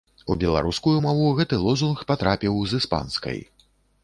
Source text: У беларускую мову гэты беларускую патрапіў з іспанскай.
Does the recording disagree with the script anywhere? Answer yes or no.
yes